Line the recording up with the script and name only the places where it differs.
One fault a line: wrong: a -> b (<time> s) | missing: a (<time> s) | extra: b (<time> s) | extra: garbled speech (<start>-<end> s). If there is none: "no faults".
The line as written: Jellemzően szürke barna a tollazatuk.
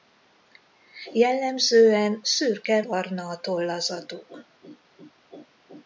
no faults